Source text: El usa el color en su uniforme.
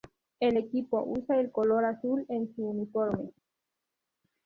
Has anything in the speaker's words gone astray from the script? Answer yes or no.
yes